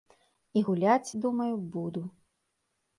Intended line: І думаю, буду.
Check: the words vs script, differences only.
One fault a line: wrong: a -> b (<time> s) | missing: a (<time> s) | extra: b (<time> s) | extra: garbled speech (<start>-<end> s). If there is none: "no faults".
extra: гуляць (0.7 s)